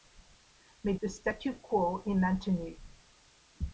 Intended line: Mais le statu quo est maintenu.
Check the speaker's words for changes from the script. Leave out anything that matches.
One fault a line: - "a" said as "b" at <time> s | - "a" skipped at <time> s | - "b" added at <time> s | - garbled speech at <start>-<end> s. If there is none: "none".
none